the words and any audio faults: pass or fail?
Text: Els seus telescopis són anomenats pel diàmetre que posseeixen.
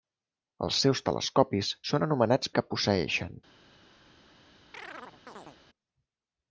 fail